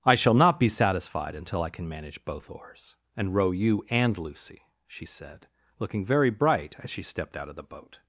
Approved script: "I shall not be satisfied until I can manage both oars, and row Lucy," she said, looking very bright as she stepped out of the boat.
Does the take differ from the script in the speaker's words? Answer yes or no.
yes